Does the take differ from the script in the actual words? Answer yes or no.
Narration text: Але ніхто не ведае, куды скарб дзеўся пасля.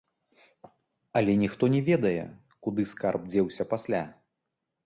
no